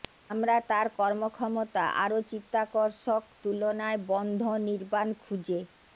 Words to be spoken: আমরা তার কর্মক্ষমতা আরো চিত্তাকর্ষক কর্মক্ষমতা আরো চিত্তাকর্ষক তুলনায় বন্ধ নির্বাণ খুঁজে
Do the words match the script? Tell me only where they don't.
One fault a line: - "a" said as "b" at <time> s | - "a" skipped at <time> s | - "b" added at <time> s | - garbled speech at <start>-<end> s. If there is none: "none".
- "কর্মক্ষমতা আরো চিত্তাকর্ষক" skipped at 3.2 s